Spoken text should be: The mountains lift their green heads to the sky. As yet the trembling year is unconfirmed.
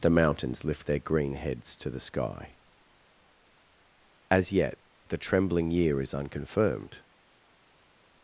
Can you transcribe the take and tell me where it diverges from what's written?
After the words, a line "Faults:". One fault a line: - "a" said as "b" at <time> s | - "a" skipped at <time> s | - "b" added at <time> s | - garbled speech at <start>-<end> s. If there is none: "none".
The mountains lift their green heads to the sky. As yet the trembling year is unconfirmed.
Faults:
none